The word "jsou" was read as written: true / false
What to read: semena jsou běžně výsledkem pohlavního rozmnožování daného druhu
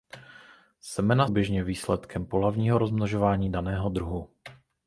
false